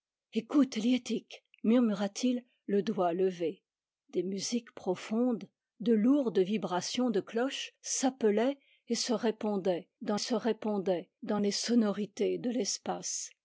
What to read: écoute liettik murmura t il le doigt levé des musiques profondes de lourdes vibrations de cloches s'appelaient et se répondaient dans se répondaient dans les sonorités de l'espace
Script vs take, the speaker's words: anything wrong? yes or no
no